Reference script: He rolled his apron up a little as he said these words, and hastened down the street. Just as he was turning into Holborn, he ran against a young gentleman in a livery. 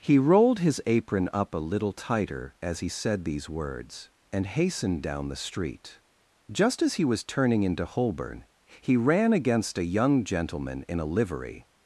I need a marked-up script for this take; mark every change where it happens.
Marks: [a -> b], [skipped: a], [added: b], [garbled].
He rolled his apron up a little [added: tighter] as he said these words, and hastened down the street. Just as he was turning into Holborn, he ran against a young gentleman in a livery.